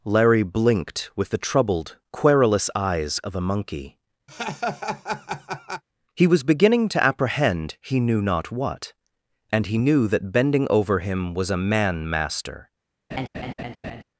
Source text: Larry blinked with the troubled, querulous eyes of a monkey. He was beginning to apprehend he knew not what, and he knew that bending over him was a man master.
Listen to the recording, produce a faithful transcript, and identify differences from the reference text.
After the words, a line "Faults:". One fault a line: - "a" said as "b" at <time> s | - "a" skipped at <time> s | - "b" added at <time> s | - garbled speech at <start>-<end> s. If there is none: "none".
Larry blinked with the troubled, querulous eyes of a monkey. He was beginning to apprehend he knew not what, and he knew that bending over him was a man master.
Faults:
none